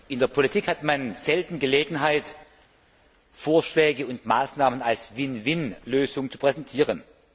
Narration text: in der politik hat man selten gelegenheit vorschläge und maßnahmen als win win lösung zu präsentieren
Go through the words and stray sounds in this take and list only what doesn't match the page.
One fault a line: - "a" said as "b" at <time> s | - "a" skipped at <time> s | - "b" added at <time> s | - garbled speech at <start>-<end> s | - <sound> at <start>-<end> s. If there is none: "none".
none